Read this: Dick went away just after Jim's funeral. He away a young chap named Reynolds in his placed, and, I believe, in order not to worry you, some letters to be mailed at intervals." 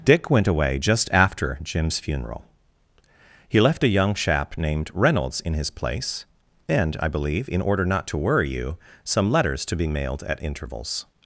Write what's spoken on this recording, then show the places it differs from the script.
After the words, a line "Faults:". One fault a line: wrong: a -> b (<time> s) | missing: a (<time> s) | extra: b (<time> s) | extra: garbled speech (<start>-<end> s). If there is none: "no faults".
Dick went away just after Jim's funeral. He left a young chap named Reynolds in his place, and, I believe, in order not to worry you, some letters to be mailed at intervals."
Faults:
wrong: away -> left (3.6 s)
wrong: placed -> place (5.7 s)